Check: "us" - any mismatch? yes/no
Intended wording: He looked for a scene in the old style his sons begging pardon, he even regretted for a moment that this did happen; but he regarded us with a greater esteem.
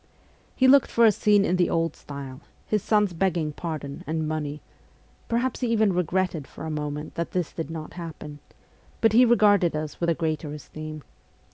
no